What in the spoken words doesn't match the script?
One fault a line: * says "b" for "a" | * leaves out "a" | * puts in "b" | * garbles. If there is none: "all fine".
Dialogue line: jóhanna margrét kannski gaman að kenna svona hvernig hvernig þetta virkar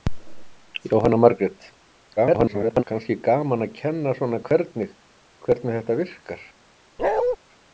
* garbles